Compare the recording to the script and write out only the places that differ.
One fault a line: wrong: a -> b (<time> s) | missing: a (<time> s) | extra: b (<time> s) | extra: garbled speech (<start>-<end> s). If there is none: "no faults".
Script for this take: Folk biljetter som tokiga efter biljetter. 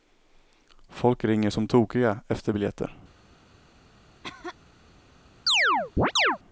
wrong: biljetter -> ringer (1.2 s)